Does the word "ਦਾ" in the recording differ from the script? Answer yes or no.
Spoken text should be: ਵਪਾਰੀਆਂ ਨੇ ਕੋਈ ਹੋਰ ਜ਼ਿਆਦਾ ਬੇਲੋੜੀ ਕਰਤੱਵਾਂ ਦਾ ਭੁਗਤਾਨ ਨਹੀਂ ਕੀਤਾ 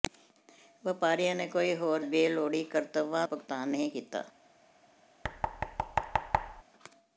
yes